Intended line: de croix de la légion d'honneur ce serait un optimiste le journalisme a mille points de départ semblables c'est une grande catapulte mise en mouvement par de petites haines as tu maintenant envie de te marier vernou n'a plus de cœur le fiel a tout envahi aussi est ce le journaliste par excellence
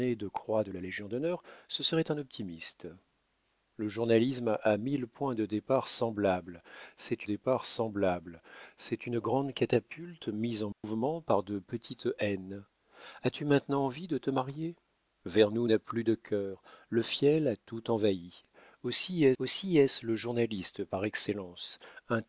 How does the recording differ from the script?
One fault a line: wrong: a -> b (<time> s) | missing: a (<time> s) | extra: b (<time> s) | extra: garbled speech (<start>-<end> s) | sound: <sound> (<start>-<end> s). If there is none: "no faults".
extra: départ semblables c'est (7.2 s)
sound: dropout (10.7-10.8 s)
extra: aussi est (19.4 s)